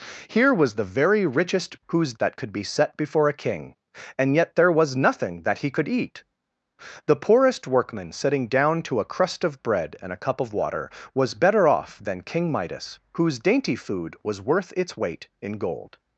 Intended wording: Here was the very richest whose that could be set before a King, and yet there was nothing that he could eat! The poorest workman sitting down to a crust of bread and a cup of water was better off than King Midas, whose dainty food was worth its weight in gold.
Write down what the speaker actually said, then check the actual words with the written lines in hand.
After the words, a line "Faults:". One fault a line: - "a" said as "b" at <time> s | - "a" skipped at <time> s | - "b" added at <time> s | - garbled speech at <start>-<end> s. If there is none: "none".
Here was the very richest whose that could be set before a King, and yet there was nothing that he could eat! The poorest workman sitting down to a crust of bread and a cup of water was better off than King Midas, whose dainty food was worth its weight in gold.
Faults:
none